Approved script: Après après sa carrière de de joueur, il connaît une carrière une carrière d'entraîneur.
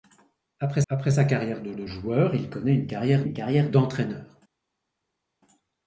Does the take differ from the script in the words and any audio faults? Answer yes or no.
no